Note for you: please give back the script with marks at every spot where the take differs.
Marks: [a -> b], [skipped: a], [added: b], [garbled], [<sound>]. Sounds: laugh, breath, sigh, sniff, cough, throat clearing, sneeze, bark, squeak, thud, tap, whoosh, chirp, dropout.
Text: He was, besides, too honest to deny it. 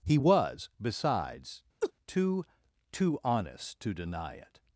He was, besides, [laugh] too [added: too] honest to deny it.